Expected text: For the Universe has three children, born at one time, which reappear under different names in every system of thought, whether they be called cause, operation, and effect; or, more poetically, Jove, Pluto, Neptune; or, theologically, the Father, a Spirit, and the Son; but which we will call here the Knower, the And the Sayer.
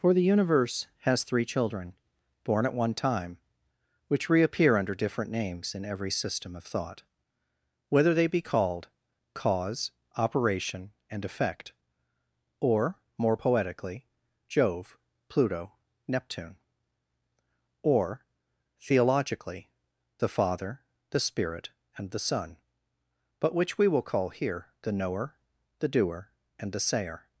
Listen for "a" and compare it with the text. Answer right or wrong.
wrong